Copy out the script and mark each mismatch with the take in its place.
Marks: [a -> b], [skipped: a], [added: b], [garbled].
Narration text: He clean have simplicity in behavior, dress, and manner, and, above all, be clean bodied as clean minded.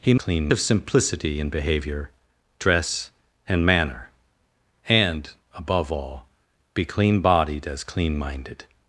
He clean have simplicity in behavior, dress, and manner, and, above all, be clean bodied as clean minded.